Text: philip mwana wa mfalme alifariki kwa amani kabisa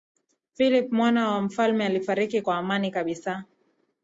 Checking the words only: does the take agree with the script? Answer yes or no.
yes